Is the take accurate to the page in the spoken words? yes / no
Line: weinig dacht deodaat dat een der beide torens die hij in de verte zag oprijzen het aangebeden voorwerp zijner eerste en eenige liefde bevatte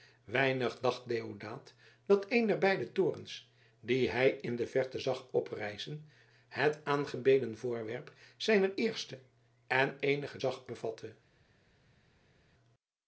no